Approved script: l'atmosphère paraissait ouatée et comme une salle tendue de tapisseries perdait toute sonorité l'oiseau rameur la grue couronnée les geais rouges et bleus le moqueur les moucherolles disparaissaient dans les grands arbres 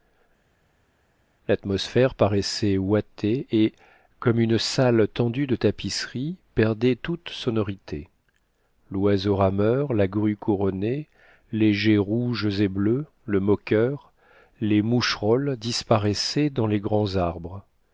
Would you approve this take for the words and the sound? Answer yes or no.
yes